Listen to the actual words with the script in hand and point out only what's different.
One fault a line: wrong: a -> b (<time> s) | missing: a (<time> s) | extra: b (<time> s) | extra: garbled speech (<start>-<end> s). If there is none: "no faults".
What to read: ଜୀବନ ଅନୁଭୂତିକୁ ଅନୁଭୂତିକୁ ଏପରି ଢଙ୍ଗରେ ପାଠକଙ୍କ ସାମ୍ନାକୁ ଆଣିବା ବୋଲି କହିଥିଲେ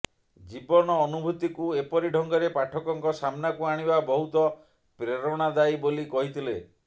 missing: ଅନୁଭୂତିକୁ (1.7 s)
extra: ବହୁତ ପ୍ରେରଣାଦାୟୀ (4.1 s)